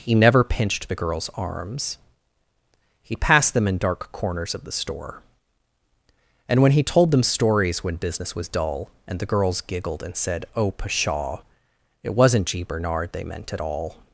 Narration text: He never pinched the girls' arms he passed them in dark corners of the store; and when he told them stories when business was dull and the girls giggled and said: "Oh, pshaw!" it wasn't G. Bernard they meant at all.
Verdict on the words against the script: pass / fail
pass